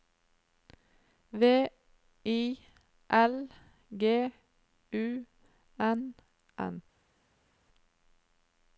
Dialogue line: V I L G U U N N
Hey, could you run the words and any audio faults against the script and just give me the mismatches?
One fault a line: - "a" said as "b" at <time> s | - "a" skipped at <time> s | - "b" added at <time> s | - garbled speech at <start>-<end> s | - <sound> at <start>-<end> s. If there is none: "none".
- "U" skipped at 5.3 s